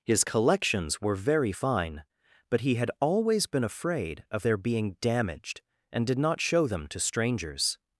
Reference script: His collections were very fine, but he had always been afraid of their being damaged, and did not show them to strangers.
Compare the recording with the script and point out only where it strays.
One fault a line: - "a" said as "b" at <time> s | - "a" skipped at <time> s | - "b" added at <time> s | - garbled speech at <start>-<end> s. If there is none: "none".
none